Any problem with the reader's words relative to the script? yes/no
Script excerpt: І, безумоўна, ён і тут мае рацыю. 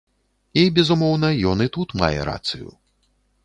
no